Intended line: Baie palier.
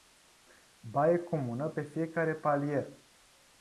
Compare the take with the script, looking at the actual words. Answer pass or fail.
fail